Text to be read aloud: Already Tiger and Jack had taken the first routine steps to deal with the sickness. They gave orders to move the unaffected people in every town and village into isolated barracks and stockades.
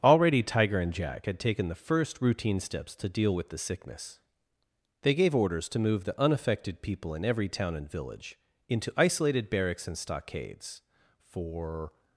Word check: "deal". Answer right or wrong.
right